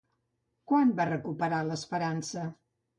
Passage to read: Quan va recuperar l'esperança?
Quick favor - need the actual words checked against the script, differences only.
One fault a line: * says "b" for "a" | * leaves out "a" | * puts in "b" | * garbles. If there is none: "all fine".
all fine